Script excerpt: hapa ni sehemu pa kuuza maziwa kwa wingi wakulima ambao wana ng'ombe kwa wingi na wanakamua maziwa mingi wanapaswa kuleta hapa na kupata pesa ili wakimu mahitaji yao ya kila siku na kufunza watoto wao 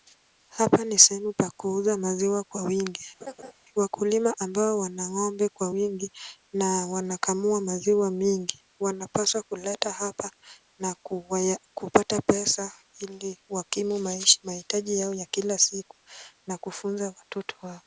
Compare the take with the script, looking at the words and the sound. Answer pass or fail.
fail